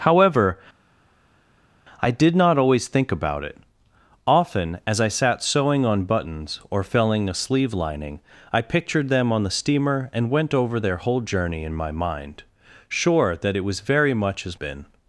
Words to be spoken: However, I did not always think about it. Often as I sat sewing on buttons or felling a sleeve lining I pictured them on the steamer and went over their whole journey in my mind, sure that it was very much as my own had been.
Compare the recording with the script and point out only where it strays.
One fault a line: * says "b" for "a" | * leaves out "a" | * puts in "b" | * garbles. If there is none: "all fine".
* leaves out "my own had"